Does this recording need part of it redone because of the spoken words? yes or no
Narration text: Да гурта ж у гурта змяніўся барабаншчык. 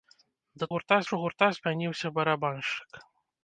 no